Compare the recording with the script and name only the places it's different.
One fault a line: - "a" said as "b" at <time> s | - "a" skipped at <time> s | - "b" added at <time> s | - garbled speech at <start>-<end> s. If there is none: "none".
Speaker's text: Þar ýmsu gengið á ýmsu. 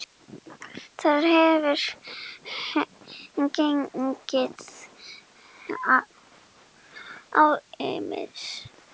- "ýmsu" said as "hefur" at 1.3 s